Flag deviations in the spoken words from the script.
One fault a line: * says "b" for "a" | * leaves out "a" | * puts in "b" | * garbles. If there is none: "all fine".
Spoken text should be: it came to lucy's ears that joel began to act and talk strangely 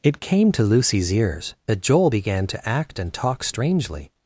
all fine